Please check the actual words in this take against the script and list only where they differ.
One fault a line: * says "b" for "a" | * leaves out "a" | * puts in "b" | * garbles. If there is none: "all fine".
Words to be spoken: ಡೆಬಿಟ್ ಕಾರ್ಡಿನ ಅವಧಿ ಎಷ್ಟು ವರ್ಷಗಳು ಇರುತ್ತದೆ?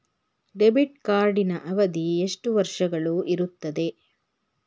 all fine